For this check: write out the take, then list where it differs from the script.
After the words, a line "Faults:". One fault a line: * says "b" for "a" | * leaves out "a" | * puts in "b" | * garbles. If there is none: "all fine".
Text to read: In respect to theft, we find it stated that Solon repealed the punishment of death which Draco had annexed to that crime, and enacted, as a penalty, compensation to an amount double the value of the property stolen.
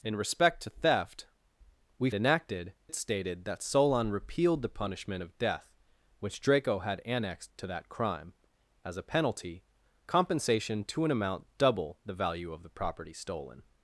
In respect to theft, we enacted it stated that Solon repealed the punishment of death which Draco had annexed to that crime, as a penalty, compensation to an amount double the value of the property stolen.
Faults:
* says "enacted" for "find"
* leaves out "and enacted"